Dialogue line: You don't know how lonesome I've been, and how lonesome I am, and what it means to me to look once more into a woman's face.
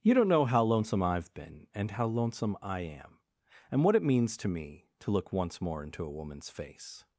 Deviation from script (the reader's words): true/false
false